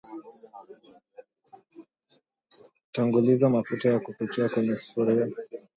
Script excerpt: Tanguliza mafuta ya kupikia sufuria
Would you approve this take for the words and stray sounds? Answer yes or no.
no